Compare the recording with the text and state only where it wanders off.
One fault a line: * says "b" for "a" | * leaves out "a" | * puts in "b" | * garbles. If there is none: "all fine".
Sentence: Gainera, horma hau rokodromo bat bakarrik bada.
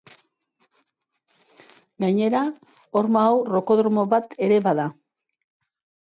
* says "ere" for "bakarrik"